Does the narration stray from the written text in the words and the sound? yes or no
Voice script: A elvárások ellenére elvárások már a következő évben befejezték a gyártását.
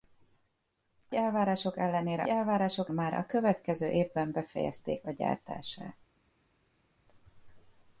no